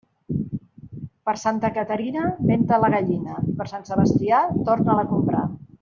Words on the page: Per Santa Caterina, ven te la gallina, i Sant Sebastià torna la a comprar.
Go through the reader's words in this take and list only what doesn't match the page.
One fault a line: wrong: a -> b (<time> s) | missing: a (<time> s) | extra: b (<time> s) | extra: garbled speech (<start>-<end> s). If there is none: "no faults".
extra: per (3.6 s)